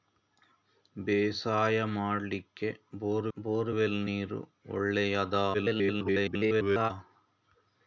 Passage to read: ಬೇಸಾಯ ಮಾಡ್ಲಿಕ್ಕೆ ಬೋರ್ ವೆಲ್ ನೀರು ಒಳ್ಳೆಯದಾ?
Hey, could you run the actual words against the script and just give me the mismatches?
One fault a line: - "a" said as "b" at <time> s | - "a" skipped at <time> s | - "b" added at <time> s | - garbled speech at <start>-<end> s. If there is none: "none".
- "ಬೋರ್" added at 3.4 s
- garbled speech at 5.5-6.9 s